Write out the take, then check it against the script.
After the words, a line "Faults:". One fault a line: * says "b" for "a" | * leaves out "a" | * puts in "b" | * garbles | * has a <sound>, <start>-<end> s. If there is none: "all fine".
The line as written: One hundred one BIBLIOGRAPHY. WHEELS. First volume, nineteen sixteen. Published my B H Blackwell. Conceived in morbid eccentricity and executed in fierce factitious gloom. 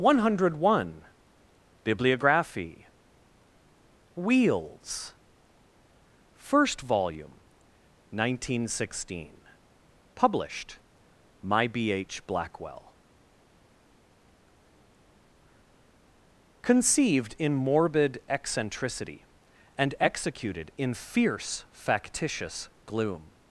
One hundred one BIBLIOGRAPHY. WHEELS. First volume, nineteen sixteen. Published my B H Blackwell. Conceived in morbid eccentricity and executed in fierce factitious gloom.
Faults:
all fine